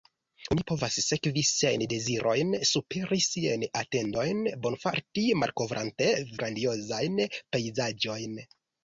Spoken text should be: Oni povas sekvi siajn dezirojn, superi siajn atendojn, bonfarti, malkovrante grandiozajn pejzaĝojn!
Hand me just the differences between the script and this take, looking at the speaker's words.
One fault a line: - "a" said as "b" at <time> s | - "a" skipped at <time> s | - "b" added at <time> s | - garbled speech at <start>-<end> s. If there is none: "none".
none